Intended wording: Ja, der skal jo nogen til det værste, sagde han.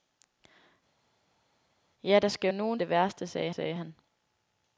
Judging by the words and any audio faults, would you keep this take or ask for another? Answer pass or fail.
fail